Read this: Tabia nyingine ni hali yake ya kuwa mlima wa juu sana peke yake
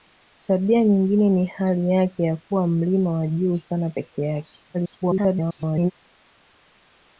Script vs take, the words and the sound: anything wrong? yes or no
yes